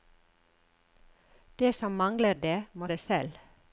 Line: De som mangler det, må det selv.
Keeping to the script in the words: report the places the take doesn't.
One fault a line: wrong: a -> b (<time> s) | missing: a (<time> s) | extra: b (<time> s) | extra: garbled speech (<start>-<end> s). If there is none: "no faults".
no faults